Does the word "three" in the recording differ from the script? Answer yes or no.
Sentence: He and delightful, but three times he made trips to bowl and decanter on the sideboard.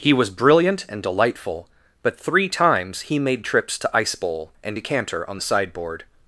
no